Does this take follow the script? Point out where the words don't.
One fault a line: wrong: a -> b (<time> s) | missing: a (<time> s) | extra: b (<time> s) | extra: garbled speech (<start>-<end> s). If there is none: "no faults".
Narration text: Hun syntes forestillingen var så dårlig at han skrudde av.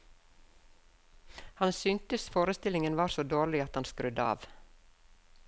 wrong: Hun -> Han (1.5 s)